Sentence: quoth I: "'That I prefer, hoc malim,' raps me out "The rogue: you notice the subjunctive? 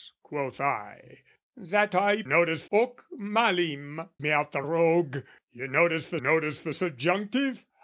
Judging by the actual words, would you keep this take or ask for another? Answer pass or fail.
fail